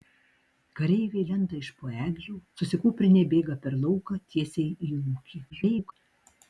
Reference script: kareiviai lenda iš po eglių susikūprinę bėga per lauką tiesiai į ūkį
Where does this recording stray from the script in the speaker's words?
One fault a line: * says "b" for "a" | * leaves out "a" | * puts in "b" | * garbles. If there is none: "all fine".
* garbles